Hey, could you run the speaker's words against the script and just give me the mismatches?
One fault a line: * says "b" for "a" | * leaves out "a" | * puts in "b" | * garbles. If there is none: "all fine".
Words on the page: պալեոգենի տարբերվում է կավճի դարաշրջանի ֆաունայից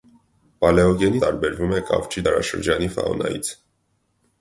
all fine